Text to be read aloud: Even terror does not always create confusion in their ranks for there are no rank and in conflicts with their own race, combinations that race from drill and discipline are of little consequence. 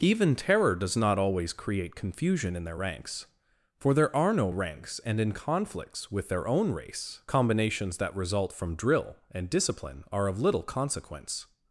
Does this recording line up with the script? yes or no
no